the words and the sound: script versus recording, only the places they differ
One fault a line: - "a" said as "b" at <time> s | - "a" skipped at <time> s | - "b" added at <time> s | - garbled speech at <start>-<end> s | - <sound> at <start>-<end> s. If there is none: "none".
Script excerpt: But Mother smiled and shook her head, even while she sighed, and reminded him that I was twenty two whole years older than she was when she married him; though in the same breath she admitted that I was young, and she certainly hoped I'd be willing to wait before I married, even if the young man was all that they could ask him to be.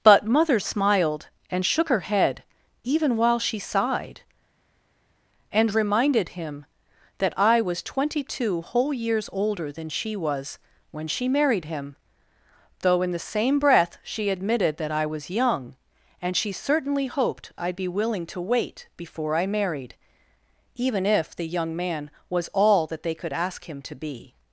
none